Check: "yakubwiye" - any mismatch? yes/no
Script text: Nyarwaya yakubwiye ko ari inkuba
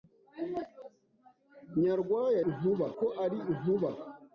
yes